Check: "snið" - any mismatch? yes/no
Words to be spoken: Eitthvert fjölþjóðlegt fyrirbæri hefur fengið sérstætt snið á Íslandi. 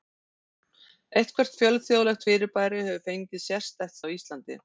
yes